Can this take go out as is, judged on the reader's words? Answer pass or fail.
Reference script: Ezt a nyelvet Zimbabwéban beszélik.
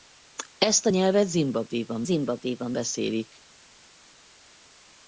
fail